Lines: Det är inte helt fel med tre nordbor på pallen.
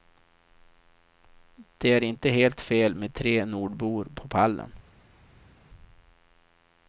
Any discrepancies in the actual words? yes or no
no